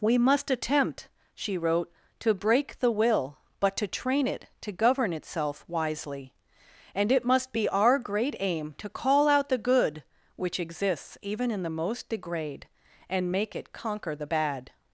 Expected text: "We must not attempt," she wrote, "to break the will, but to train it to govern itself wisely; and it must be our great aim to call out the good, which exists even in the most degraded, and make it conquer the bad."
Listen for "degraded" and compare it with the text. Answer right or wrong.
wrong